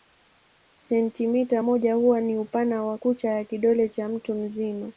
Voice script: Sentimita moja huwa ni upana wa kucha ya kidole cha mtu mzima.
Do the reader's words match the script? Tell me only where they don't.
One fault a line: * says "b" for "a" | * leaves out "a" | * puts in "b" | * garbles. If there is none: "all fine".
all fine